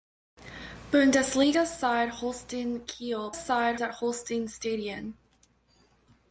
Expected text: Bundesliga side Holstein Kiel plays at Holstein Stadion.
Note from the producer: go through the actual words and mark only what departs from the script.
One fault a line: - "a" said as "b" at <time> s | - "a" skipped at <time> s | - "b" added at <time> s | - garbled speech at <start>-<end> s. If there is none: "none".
- "plays" said as "side" at 3.3 s